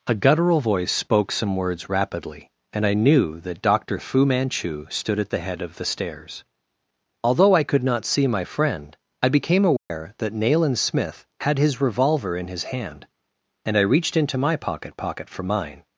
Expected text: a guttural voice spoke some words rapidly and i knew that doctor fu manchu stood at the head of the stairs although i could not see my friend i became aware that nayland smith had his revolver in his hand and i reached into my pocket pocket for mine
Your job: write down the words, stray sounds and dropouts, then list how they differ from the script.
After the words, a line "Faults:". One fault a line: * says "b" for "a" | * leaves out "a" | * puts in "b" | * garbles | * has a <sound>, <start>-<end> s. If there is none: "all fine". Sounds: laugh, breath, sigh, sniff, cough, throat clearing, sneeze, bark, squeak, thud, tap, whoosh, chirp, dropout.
a guttural voice spoke some words rapidly and i knew that doctor fu manchu stood at the head of the stairs although i could not see my friend i became aware that nayland smith had his revolver in his hand and i reached into my pocket pocket for mine
Faults:
* has a dropout, 9.8-9.9 s